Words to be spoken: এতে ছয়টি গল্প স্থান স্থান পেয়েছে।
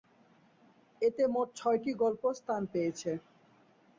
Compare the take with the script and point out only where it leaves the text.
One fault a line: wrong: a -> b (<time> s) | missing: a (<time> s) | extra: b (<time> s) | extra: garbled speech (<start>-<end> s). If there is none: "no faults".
extra: মোট (1.3 s)
missing: স্থান (2.6 s)